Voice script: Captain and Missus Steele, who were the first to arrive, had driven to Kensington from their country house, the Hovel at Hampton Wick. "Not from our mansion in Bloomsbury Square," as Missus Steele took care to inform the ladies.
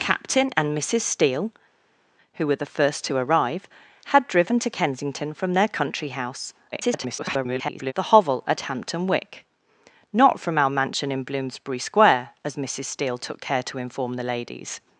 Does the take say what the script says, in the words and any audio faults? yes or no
no